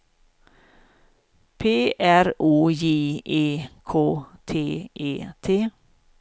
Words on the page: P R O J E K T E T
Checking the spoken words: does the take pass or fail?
pass